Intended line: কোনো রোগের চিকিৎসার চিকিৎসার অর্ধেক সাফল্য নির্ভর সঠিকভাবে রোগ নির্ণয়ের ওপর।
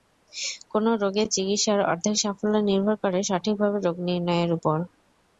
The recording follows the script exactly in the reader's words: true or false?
false